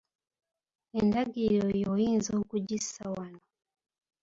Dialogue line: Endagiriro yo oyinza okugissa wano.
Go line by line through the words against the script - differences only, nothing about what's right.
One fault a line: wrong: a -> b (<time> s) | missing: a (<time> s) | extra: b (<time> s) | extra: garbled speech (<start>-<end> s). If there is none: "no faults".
no faults